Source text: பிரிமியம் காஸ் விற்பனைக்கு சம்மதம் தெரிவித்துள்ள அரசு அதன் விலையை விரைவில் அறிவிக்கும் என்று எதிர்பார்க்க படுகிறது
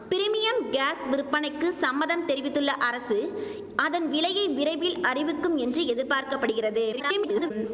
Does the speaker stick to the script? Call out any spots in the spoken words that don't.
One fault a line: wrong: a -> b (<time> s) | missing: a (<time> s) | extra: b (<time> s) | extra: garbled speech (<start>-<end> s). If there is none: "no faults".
extra: garbled speech (6.9-7.5 s)